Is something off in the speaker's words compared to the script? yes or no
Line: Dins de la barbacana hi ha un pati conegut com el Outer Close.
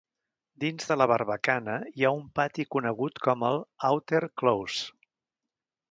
no